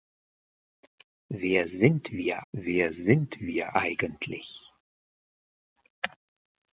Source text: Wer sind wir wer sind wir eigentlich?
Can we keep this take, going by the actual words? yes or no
yes